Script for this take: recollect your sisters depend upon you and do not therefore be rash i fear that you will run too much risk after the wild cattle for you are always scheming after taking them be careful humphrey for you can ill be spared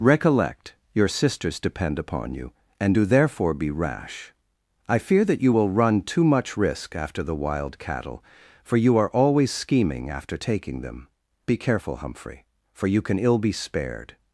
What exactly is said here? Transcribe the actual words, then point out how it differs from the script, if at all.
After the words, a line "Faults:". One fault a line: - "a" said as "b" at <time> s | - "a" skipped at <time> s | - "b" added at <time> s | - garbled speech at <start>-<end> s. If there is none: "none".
recollect your sisters depend upon you and do therefore be rash i fear that you will run too much risk after the wild cattle for you are always scheming after taking them be careful humphrey for you can ill be spared
Faults:
- "not" skipped at 3.0 s